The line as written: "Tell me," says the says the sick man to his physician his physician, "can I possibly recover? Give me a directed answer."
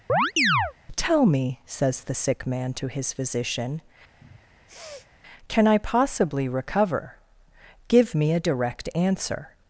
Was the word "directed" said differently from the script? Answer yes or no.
yes